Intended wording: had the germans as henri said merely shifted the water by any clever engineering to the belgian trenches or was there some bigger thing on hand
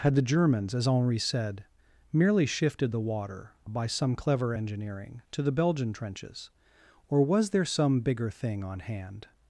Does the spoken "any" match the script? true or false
false